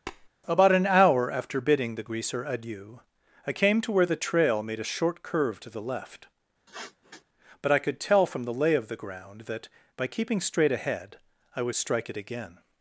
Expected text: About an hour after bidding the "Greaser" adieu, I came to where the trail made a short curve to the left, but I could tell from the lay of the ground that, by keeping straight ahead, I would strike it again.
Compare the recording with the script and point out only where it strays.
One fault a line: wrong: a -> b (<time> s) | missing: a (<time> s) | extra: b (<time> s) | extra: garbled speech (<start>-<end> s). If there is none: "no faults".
no faults